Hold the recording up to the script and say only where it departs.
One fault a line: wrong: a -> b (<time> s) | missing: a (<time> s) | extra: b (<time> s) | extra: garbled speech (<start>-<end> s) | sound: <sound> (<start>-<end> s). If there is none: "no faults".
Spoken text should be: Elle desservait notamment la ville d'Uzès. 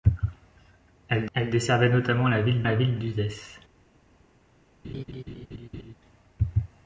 extra: elle (1.3 s)
extra: la ville (2.6 s)
sound: laugh (4.8-6.0 s)